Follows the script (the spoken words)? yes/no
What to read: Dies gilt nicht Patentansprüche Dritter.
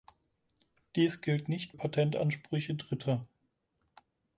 yes